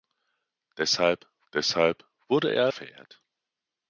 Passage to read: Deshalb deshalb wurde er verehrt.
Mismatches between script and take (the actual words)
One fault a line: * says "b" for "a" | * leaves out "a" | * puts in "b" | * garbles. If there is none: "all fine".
all fine